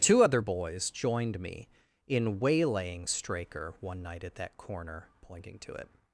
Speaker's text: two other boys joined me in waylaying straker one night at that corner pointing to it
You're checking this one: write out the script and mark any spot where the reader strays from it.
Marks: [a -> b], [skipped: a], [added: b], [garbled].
two other boys joined me in waylaying straker one night at that corner pointing to it